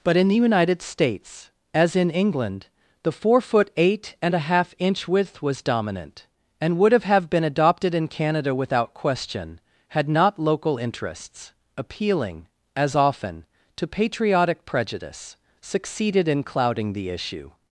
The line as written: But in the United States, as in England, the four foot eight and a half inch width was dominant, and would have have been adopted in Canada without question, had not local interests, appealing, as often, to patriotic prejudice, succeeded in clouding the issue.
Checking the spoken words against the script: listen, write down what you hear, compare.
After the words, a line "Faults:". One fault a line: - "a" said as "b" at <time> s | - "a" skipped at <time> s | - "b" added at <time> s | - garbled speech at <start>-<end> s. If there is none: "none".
But in the United States, as in England, the four foot eight and a half inch width was dominant, and would have have been adopted in Canada without question, had not local interests, appealing, as often, to patriotic prejudice, succeeded in clouding the issue.
Faults:
none